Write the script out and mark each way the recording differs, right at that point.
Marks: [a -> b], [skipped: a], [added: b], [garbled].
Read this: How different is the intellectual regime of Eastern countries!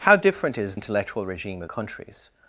How different is [skipped: the] intellectual regime of [skipped: Eastern] countries!